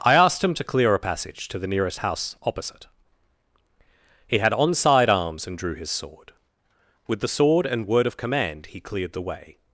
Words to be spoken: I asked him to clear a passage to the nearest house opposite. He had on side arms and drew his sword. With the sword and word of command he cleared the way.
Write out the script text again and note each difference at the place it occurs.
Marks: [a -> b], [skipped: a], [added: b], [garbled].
I asked him to clear a passage to the nearest house opposite. He had on side arms and drew his sword. With the sword and word of command he cleared the way.